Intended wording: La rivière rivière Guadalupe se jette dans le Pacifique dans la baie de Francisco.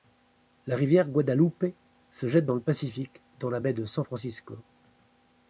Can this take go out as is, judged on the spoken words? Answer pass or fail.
fail